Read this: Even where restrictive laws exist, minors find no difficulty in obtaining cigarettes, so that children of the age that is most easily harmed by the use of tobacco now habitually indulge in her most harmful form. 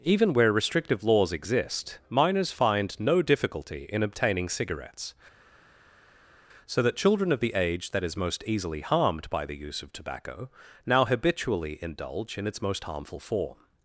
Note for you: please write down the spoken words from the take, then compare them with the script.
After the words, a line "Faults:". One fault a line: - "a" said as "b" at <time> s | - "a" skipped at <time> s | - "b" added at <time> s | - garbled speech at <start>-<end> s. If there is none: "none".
Even where restrictive laws exist, minors find no difficulty in obtaining cigarettes, so that children of the age that is most easily harmed by the use of tobacco now habitually indulge in its most harmful form.
Faults:
- "her" said as "its" at 12.5 s